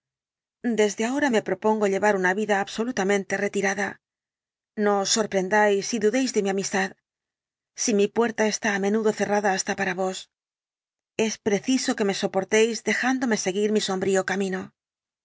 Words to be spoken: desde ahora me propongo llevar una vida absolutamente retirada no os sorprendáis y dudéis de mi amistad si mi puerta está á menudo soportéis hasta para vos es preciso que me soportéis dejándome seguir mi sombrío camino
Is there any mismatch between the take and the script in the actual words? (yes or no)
yes